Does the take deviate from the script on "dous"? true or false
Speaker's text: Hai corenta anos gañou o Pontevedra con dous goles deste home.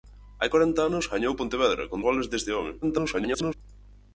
true